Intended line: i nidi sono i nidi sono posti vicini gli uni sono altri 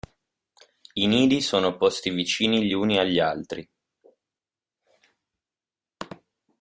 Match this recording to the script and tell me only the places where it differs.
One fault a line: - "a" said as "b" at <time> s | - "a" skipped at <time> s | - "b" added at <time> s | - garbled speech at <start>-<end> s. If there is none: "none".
- "i nidi sono" skipped at 1.8 s
- "sono" said as "agli" at 3.0 s